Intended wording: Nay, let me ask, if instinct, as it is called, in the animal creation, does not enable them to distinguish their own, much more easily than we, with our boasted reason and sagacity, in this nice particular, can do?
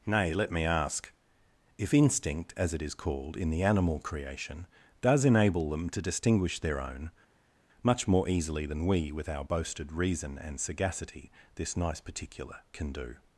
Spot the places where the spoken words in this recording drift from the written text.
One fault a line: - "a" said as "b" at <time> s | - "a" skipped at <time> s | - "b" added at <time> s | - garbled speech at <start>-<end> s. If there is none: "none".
- "not" skipped at 5.2 s
- "in" skipped at 11.3 s